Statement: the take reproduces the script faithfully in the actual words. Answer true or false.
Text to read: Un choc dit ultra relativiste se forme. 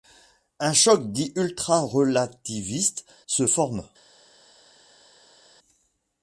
true